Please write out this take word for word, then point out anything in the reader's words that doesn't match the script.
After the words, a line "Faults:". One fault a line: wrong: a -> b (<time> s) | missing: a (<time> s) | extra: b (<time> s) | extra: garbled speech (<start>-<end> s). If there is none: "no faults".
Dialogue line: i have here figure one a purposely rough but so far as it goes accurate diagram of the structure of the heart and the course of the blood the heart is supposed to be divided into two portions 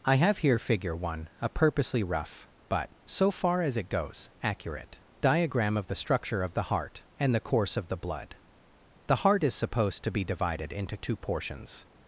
i have here figure one a purposely rough but so far as it goes accurate diagram of the structure of the heart and the course of the blood the heart is supposed to be divided into two portions
Faults:
no faults